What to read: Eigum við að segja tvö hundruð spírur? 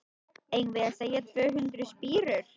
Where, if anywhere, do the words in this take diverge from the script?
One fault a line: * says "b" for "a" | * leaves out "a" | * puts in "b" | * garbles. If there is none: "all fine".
all fine